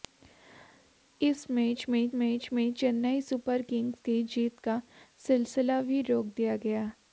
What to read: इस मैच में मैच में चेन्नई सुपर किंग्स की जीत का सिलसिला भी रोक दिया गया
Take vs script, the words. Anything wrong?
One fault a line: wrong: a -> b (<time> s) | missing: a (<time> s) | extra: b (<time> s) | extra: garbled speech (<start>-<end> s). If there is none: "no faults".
no faults